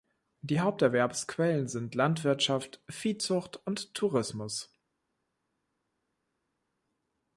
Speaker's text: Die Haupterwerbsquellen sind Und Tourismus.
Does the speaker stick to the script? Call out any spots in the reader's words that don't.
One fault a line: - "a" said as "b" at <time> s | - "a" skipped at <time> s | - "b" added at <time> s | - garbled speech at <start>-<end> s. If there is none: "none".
- "Landwirtschaft Viehzucht" added at 1.9 s